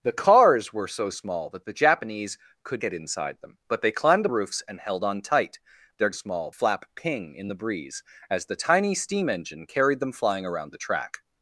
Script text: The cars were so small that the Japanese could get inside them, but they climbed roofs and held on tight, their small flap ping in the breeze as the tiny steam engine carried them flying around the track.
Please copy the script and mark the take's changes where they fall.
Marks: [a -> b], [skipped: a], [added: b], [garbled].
The cars were so small that the Japanese could get inside them, but they climbed roofs and held on tight, their small flap ping in the breeze as the tiny steam engine carried them flying around the track.